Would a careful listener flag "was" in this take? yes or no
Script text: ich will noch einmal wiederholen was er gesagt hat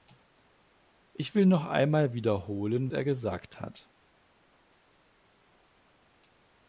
yes